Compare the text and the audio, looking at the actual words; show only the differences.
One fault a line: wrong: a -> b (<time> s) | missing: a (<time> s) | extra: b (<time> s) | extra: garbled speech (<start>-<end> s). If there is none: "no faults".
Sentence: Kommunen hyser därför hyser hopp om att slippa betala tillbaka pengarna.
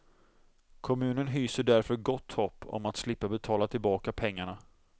wrong: hyser -> gott (1.9 s)